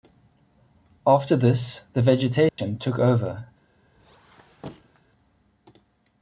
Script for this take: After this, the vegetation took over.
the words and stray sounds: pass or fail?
fail